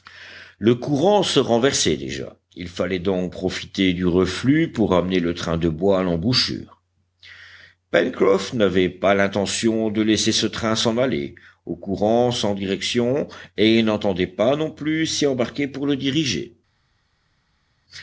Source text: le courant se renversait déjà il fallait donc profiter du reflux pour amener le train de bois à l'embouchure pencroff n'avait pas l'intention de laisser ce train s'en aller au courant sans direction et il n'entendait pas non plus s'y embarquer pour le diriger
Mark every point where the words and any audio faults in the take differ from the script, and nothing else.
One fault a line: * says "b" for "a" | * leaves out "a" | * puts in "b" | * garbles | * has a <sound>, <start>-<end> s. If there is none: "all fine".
all fine